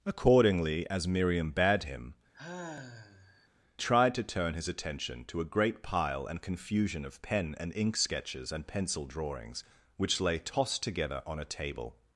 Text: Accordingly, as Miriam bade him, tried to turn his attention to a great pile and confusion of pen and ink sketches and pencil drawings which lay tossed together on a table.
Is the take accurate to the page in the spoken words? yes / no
yes